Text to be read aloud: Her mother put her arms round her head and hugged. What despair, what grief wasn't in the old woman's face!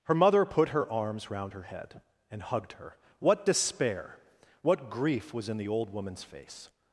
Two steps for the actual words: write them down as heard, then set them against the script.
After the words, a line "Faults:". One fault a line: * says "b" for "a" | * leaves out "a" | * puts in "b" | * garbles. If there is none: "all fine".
Her mother put her arms round her head and hugged her. What despair, what grief was in the old woman's face!
Faults:
* puts in "her"
* says "was" for "wasn't"